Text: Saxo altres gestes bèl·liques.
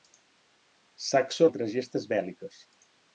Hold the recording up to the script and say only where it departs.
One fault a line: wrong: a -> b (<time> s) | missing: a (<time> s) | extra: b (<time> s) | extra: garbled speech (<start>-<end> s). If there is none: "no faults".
no faults